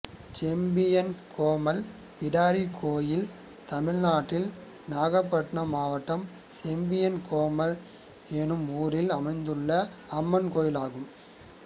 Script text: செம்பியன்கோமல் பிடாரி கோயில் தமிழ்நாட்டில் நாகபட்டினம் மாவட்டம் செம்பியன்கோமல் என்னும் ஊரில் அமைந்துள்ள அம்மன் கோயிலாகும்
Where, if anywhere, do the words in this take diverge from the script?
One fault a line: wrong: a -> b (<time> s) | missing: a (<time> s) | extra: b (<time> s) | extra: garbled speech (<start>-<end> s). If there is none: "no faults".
no faults